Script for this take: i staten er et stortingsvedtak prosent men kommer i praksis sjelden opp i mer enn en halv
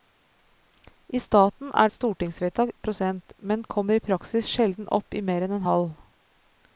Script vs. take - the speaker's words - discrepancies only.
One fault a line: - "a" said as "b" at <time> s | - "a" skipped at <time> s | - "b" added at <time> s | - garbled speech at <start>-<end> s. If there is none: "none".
none